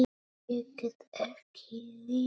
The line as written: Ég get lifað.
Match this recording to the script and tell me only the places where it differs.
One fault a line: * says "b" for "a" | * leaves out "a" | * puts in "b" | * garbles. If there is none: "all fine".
* puts in "ekki"